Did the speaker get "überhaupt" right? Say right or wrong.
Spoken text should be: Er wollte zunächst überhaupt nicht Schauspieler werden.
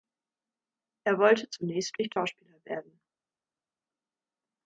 wrong